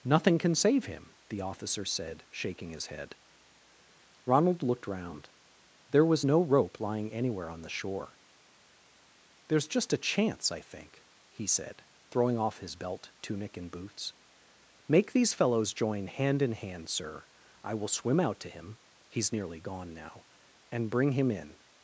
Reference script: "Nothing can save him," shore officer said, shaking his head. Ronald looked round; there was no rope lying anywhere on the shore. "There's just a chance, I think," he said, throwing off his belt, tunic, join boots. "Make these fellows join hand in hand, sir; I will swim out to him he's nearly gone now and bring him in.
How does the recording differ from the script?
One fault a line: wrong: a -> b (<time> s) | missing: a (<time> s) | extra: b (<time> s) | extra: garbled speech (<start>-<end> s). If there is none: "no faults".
wrong: shore -> the (1.3 s)
wrong: join -> and (13.6 s)